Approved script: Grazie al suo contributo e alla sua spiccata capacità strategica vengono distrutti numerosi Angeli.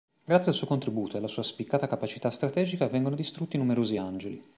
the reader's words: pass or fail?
pass